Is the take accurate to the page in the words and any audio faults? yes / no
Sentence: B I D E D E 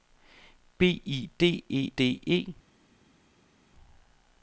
yes